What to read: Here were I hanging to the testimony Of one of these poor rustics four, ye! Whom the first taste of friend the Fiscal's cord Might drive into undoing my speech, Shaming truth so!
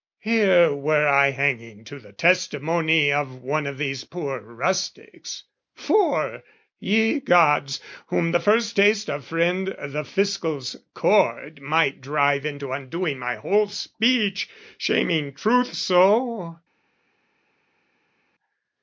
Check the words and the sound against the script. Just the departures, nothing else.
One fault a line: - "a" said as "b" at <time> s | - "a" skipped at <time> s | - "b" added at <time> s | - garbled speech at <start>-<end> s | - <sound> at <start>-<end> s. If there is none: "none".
- "Gods" added at 7.2 s
- "whole" added at 13.4 s